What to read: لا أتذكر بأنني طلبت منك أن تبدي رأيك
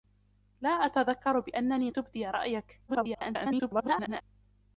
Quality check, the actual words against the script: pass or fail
fail